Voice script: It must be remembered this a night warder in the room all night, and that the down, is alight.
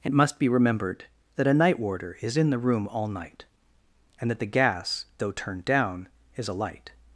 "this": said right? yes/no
no